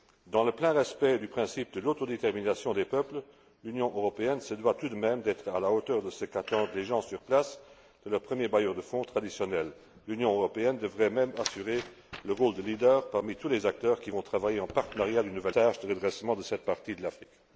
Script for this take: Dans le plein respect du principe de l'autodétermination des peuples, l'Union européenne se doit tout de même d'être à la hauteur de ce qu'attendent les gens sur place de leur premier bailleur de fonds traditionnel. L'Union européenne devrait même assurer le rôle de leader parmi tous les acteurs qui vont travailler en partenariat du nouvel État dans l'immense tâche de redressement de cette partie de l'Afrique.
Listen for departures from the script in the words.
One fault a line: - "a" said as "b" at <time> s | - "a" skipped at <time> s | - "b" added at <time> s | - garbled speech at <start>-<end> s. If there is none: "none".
- "État dans l'immense" skipped at 15.6 s